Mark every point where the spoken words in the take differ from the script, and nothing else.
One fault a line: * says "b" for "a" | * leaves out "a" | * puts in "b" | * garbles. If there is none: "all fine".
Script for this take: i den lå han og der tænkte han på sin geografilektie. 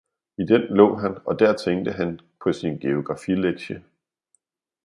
all fine